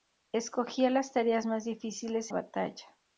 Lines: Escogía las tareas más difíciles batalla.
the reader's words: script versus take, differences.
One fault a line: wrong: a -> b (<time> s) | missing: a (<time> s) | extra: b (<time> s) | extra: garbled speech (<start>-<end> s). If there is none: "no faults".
no faults